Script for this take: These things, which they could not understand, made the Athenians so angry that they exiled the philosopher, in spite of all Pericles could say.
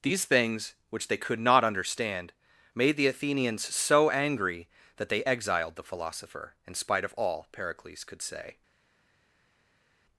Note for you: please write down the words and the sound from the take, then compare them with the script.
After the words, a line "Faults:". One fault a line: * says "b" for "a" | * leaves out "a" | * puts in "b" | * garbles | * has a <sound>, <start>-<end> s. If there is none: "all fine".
These things, which they could not understand, made the Athenians so angry that they exiled the philosopher, in spite of all Pericles could say.
Faults:
all fine